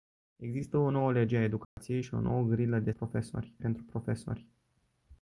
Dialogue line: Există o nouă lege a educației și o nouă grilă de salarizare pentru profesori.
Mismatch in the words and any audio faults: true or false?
true